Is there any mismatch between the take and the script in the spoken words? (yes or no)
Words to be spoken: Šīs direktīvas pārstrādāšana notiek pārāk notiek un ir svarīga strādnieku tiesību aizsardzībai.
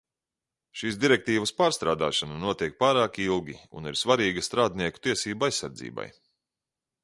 yes